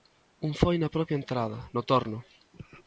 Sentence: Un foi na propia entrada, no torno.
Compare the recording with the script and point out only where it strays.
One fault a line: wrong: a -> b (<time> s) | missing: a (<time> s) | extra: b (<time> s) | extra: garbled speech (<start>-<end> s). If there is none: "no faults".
no faults